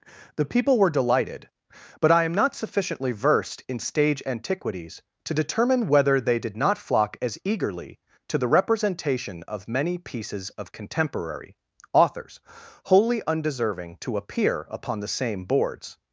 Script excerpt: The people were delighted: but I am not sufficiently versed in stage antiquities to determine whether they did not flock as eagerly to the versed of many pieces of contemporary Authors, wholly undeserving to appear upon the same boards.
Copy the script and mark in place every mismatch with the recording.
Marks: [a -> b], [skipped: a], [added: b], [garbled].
The people were delighted: but I am not sufficiently versed in stage antiquities to determine whether they did not flock as eagerly to the [versed -> representation] of many pieces of contemporary Authors, wholly undeserving to appear upon the same boards.